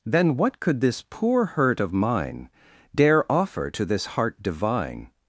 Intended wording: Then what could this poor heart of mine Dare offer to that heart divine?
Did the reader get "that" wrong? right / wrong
wrong